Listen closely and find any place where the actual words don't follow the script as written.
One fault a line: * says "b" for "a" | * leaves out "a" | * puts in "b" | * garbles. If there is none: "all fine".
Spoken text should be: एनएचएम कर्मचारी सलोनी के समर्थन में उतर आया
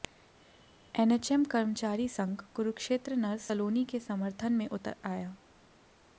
* puts in "संघ कुरुक्षेत्र नर्स"